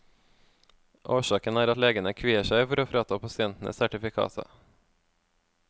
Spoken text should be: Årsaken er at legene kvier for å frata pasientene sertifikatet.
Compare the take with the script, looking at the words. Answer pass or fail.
fail